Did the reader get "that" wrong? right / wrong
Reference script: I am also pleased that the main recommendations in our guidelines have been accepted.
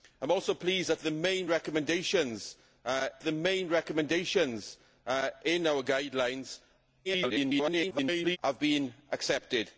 right